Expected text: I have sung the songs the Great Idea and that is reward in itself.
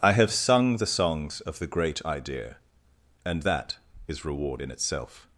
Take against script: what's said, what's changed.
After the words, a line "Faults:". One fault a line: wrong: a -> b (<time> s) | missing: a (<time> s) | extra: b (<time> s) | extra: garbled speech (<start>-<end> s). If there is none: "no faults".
I have sung the songs of the Great Idea and that is reward in itself.
Faults:
extra: of (1.4 s)